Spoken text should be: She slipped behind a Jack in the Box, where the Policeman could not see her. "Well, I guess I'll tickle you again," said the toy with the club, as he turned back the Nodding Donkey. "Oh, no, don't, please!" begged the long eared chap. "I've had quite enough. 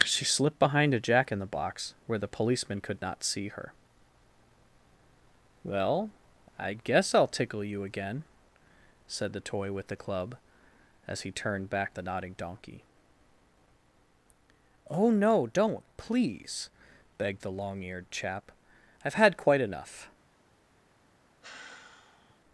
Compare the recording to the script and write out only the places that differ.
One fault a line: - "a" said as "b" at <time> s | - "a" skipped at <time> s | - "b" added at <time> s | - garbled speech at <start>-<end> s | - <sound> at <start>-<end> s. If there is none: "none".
- sigh at 21.4-22.4 s